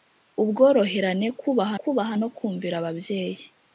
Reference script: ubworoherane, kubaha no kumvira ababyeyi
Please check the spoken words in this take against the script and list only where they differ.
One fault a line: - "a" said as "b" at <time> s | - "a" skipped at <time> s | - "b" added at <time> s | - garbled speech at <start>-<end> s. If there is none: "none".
- "kubaha" added at 1.8 s